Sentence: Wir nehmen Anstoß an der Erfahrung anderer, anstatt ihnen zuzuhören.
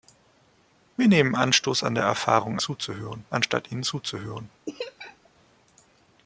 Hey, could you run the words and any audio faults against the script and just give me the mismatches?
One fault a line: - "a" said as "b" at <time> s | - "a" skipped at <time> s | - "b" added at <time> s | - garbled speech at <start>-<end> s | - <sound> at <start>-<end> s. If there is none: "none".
- "anderer" said as "zuzuhören" at 2.6 s
- laugh at 4.7-5.3 s